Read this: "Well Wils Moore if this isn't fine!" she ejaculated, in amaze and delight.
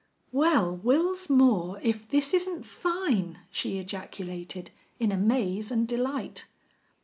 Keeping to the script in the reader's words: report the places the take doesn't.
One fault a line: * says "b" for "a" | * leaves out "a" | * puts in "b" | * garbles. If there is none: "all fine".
all fine